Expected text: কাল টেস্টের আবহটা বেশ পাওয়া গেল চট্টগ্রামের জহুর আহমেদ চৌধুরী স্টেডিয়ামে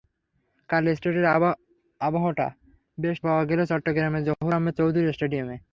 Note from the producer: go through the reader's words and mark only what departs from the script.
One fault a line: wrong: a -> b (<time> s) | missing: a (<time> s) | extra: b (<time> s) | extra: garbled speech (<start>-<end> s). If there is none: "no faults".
no faults